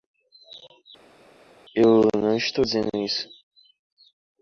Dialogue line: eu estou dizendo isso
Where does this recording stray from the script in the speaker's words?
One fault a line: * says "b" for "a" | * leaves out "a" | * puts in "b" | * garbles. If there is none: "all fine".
* puts in "não"